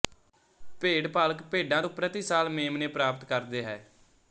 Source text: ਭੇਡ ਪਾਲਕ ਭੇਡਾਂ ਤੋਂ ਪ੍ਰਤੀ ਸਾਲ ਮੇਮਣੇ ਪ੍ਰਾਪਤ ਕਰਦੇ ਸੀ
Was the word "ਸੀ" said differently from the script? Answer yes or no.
yes